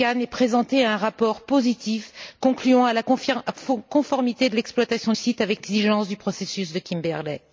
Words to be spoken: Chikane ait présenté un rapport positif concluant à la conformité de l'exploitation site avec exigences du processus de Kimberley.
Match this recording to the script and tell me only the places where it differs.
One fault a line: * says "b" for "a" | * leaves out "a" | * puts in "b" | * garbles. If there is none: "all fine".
all fine